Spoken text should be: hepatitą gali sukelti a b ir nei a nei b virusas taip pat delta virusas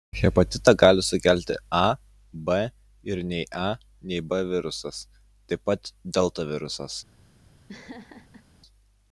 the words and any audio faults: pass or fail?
fail